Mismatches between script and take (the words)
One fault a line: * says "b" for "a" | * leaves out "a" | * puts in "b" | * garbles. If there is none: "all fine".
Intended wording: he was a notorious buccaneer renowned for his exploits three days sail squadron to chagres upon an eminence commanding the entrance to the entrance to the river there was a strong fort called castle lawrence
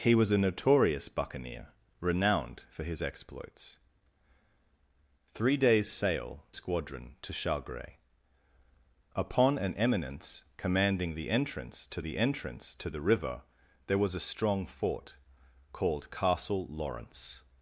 all fine